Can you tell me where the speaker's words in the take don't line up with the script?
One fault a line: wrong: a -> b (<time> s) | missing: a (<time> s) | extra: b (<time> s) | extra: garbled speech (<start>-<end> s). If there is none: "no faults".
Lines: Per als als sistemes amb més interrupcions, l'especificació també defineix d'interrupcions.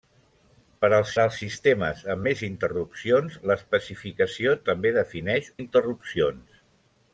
no faults